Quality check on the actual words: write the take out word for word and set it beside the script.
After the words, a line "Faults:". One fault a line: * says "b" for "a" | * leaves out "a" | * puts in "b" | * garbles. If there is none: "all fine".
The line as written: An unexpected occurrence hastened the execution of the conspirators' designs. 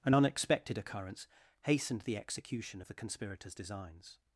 An unexpected occurrence hastened the execution of the conspirators' designs.
Faults:
all fine